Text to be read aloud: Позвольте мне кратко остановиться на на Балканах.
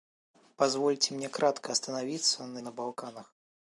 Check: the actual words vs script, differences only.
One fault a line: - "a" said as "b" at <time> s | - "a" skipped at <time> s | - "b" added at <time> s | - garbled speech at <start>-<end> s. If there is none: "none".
none